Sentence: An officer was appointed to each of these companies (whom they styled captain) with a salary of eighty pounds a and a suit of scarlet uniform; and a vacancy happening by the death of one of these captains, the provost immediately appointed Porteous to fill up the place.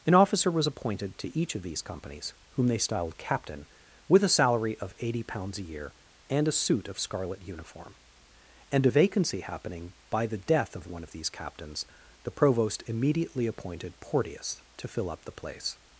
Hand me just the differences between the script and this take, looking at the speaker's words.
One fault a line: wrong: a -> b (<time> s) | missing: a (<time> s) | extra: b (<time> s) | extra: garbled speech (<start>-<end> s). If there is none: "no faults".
extra: year (5.6 s)